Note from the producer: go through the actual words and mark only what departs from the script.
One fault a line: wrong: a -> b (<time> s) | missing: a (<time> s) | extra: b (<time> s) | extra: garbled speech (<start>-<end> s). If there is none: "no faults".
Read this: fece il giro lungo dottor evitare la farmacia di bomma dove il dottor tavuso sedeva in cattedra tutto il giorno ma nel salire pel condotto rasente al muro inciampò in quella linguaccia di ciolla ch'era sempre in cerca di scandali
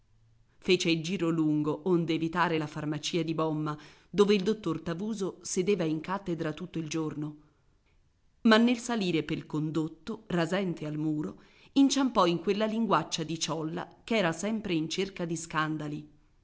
wrong: dottor -> onde (1.9 s)